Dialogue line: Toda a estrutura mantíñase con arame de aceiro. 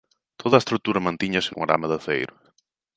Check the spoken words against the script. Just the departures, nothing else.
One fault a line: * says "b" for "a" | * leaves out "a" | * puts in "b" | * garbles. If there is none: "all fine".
all fine